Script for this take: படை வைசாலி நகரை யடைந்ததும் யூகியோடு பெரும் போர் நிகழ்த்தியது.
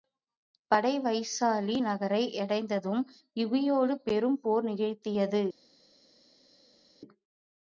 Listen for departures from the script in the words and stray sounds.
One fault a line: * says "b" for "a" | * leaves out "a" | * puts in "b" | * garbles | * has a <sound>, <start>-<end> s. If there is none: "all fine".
all fine